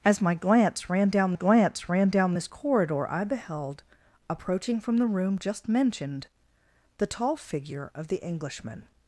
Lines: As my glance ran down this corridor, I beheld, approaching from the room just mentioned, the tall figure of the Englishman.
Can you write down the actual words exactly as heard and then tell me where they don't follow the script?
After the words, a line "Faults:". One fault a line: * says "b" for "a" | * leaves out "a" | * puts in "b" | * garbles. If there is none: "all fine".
As my glance ran down glance ran down this corridor, I beheld, approaching from the room just mentioned, the tall figure of the Englishman.
Faults:
* puts in "glance ran down"